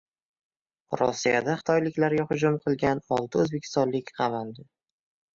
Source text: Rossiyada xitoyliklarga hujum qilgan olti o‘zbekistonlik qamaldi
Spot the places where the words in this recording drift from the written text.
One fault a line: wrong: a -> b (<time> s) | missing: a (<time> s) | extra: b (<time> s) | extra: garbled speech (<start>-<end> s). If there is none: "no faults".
no faults